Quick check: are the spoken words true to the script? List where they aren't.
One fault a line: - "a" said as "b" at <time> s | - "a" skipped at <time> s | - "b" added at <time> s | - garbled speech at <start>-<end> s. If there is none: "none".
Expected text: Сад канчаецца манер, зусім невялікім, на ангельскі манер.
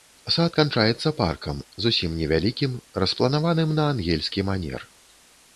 - "манер" said as "паркам" at 1.2 s
- "распланаваным" added at 3.0 s